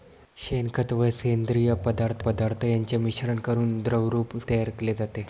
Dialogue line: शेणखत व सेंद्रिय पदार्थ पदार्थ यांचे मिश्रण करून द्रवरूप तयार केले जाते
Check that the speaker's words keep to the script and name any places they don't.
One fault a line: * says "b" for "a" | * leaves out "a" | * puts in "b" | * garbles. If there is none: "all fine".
all fine